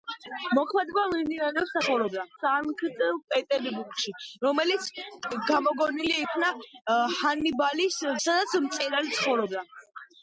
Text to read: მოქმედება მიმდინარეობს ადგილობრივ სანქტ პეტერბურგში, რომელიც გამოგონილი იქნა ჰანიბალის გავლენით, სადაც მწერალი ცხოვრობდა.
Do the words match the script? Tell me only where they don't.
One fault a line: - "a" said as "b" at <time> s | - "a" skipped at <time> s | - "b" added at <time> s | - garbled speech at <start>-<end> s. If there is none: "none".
- "ადგილობრივ" said as "ცხოვრობდა" at 1.8 s
- "გავლენით" skipped at 8.0 s